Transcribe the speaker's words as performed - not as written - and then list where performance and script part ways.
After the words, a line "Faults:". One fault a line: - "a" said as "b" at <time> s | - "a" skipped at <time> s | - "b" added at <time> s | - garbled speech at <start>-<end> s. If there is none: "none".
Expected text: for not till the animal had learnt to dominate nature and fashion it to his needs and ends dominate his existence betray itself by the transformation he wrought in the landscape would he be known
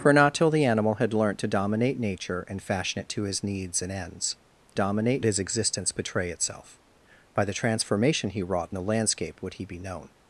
for not till the animal had learnt to dominate nature and fashion it to his needs and ends dominate his existence betray itself by the transformation he wrought in the landscape would he be known
Faults:
none